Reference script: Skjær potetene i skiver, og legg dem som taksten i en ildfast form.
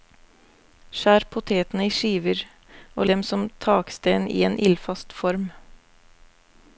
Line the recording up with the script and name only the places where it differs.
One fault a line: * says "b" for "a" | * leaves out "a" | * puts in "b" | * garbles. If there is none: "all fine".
* leaves out "legg"